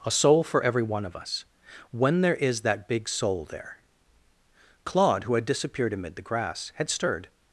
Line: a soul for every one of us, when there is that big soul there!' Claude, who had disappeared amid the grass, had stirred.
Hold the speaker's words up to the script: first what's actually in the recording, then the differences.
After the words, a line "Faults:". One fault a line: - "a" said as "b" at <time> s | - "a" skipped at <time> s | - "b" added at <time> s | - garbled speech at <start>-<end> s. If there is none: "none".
a soul for every one of us, when there is that big soul there!' Claude, who had disappeared amid the grass, had stirred.
Faults:
none